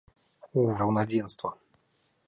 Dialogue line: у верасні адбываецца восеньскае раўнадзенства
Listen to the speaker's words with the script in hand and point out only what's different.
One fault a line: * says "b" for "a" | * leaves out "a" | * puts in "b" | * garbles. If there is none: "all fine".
* leaves out "верасні адбываецца восеньскае"